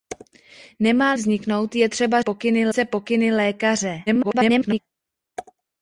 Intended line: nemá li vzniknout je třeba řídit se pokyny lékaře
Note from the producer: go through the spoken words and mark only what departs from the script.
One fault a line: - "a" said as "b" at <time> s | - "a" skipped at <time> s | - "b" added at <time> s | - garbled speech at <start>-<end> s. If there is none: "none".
- "li" skipped at 1.1 s
- "řídit" said as "pokyny" at 2.2 s
- garbled speech at 4.1-4.8 s